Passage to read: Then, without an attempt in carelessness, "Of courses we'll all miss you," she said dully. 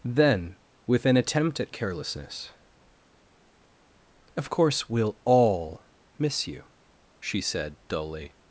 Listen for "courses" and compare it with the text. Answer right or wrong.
wrong